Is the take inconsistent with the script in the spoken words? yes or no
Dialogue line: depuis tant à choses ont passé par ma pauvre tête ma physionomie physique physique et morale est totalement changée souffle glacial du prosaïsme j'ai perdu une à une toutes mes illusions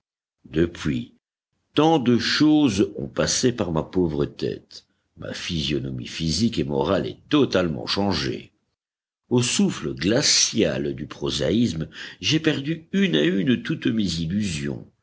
yes